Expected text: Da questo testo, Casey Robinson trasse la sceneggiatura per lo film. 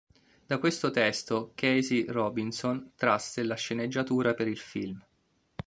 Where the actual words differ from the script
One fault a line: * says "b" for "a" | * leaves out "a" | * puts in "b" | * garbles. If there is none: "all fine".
* says "il" for "lo"